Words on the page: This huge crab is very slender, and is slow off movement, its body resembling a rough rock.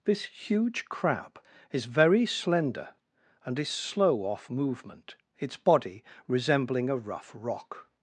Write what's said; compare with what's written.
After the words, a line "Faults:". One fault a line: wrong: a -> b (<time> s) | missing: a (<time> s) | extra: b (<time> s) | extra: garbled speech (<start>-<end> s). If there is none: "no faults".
This huge crab is very slender, and is slow off movement, its body resembling a rough rock.
Faults:
no faults